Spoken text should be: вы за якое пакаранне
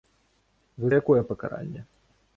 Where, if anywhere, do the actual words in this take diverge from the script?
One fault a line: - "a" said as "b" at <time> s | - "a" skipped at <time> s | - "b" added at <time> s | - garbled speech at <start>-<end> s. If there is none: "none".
- "за" skipped at 0.9 s